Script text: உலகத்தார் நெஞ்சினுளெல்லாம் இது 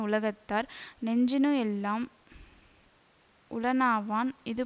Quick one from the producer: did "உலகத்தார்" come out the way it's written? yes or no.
yes